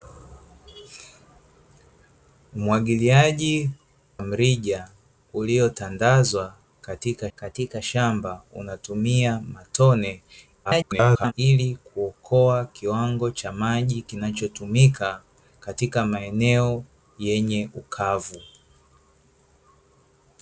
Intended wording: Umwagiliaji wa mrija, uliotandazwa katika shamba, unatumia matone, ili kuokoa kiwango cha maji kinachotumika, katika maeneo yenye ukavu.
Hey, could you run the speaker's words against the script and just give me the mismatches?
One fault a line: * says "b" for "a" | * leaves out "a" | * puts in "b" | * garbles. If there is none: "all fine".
* leaves out "wa"
* puts in "katika"
* garbles